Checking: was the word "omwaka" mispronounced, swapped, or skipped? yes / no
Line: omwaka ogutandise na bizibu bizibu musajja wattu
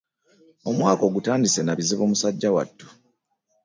no